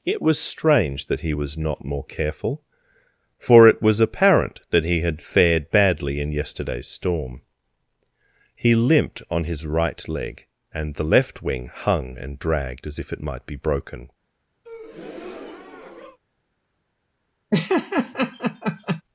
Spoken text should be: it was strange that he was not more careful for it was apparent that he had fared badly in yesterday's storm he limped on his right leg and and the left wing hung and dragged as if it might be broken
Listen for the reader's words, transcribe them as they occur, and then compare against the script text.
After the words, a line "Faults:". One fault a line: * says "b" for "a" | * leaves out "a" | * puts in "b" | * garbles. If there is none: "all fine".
it was strange that he was not more careful for it was apparent that he had fared badly in yesterday's storm he limped on his right leg and the left wing hung and dragged as if it might be broken
Faults:
* leaves out "and"